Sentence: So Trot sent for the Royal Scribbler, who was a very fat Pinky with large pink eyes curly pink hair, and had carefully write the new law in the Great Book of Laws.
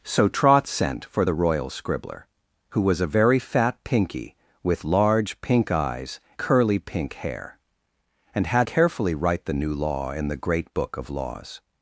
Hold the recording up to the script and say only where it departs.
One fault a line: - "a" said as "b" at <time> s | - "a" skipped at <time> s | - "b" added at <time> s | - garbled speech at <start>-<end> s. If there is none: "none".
none